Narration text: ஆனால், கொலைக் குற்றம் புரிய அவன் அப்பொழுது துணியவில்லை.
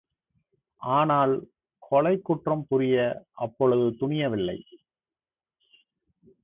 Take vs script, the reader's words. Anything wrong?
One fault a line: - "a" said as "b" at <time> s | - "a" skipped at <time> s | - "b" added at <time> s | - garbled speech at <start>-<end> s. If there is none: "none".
- "அவன்" skipped at 3.3 s